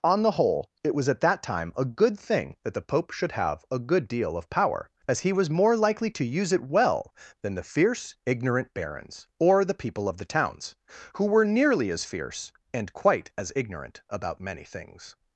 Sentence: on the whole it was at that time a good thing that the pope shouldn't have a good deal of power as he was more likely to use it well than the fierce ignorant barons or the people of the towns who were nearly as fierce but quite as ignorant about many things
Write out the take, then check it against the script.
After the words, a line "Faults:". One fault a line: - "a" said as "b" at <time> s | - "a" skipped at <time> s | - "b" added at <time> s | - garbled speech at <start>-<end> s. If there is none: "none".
on the whole it was at that time a good thing that the pope should have a good deal of power as he was more likely to use it well than the fierce ignorant barons or the people of the towns who were nearly as fierce and quite as ignorant about many things
Faults:
- "shouldn't" said as "should" at 3.1 s
- "but" said as "and" at 12.7 s